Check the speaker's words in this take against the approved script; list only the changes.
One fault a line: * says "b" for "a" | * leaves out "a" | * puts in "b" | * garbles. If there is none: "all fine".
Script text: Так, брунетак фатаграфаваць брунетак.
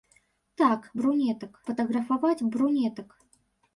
all fine